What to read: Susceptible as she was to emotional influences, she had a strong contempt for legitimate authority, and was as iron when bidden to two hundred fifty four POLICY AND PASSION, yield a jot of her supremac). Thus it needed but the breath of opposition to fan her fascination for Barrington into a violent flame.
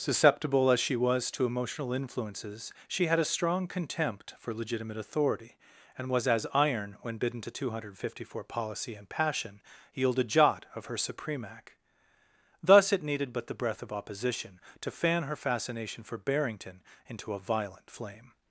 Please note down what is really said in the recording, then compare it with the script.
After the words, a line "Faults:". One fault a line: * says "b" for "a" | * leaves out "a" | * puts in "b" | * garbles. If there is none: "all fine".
Susceptible as she was to emotional influences, she had a strong contempt for legitimate authority, and was as iron when bidden to two hundred fifty four POLICY AND PASSION, yield a jot of her supremac). Thus it needed but the breath of opposition to fan her fascination for Barrington into a violent flame.
Faults:
all fine